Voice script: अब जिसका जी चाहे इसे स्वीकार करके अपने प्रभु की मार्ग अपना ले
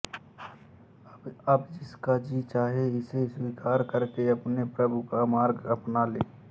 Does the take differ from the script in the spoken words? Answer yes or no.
yes